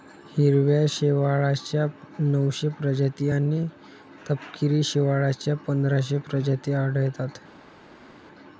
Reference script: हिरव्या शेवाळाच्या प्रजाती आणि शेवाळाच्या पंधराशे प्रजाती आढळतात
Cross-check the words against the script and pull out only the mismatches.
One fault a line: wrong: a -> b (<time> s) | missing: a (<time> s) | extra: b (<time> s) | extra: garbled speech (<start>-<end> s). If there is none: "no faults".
extra: नऊशे (2.2 s)
extra: तपकिरी (4.3 s)